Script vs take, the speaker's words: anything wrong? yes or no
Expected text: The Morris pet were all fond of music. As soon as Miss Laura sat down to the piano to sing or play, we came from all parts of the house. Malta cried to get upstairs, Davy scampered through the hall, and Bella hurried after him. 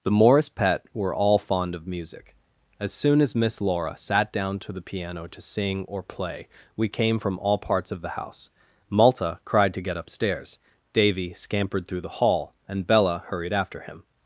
no